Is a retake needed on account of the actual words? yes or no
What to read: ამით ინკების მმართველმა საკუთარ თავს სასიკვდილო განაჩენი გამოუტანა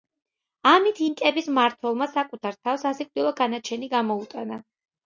no